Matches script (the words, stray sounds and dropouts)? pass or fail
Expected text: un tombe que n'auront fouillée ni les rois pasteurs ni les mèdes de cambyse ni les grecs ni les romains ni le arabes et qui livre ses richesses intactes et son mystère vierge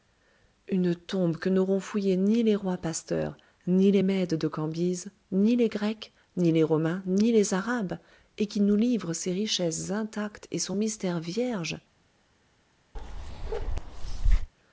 fail